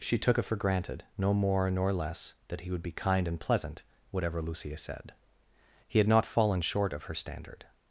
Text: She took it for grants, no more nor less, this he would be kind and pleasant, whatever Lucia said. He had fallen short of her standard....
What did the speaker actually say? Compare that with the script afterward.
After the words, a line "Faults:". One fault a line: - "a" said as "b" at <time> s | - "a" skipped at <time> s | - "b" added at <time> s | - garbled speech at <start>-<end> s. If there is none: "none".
She took it for granted, no more nor less, that he would be kind and pleasant, whatever Lucia said. He had not fallen short of her standard....
Faults:
- "grants" said as "granted" at 0.6 s
- "this" said as "that" at 2.5 s
- "not" added at 6.1 s